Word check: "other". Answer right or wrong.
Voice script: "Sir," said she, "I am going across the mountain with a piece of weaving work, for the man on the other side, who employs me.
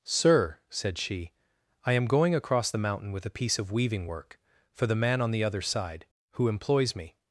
right